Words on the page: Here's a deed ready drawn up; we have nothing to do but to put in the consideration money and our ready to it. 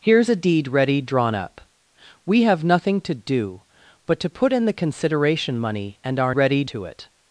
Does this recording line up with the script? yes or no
yes